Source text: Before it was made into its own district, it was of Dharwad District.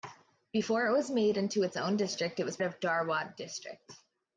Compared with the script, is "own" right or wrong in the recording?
right